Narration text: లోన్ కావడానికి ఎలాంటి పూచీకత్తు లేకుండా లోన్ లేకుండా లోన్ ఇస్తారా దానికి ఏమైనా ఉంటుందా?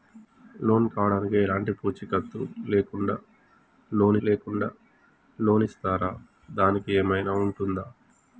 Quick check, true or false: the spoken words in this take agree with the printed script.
true